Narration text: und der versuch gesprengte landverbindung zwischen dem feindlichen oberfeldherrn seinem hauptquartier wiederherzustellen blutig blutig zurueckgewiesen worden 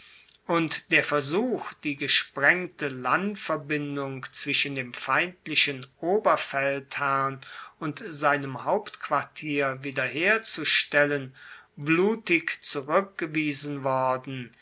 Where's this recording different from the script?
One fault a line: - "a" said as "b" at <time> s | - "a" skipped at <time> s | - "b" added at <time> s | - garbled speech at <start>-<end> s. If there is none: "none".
- "die" added at 1.8 s
- "und" added at 7.8 s
- "blutig" skipped at 12.6 s